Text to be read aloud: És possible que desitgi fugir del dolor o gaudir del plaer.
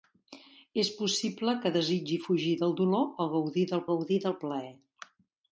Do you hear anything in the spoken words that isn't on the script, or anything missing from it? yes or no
yes